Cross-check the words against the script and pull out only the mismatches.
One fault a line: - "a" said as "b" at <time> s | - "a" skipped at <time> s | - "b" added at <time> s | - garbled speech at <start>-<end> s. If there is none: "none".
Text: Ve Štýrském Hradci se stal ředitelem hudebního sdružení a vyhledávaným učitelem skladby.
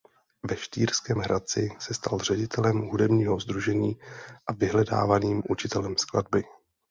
none